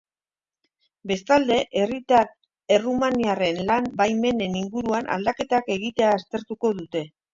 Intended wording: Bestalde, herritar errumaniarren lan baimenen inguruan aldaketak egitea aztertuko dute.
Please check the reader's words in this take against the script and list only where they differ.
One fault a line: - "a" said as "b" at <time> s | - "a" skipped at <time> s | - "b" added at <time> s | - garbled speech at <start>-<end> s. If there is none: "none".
none